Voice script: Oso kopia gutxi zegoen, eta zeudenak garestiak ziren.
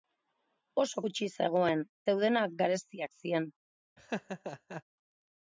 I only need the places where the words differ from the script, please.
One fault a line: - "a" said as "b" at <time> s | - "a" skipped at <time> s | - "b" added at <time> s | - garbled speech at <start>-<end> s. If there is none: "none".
- "kopia" skipped at 1.0 s
- "eta" skipped at 1.9 s